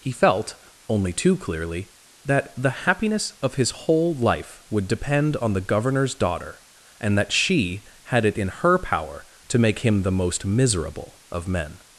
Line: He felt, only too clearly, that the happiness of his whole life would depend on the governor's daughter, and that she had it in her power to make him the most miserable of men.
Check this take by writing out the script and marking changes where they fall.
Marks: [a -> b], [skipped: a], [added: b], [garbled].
He felt, only too clearly, that the happiness of his whole life would depend on the governor's daughter, and that she had it in her power to make him the most miserable of men.